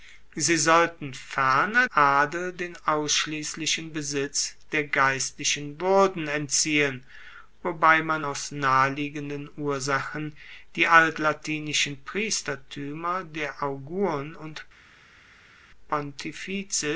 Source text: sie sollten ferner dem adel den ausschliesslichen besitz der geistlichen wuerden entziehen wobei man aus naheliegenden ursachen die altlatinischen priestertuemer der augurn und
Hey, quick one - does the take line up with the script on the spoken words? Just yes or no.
no